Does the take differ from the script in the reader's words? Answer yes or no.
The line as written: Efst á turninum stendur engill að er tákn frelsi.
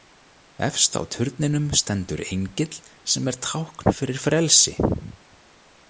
yes